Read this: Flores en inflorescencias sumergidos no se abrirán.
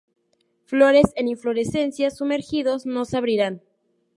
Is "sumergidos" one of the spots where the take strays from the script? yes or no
no